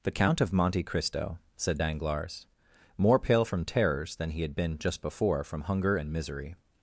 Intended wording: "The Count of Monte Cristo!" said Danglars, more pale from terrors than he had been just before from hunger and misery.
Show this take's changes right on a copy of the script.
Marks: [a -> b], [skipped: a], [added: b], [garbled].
"The Count of Monte Cristo!" said Danglars, more pale from terrors than he had been just before from hunger and misery.